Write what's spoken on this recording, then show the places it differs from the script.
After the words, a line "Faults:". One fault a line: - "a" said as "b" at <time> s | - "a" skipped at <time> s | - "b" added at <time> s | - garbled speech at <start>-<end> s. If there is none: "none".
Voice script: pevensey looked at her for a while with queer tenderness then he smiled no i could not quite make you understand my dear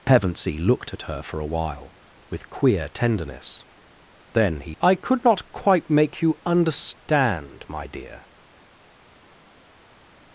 pevensey looked at her for a while with queer tenderness then he i could not quite make you understand my dear
Faults:
- "smiled no" skipped at 4.7 s